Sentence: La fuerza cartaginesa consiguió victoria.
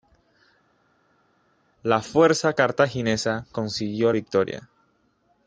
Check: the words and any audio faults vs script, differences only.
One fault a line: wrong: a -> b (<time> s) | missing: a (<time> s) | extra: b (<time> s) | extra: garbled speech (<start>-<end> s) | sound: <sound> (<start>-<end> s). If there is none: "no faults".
no faults